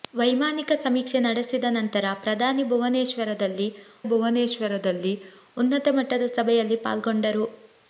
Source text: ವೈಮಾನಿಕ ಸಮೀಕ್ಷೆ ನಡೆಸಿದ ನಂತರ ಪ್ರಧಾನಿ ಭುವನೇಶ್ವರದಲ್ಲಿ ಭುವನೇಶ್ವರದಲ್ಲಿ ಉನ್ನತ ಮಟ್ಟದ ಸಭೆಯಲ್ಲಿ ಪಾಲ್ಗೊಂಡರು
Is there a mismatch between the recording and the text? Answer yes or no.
no